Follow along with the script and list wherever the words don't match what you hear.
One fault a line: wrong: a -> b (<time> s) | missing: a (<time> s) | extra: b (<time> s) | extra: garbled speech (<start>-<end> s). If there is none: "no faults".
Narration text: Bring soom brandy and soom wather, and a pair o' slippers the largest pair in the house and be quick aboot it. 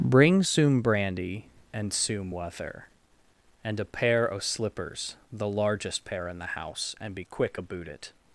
no faults